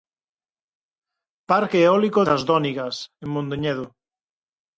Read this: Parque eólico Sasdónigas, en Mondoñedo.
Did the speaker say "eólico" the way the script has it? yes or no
yes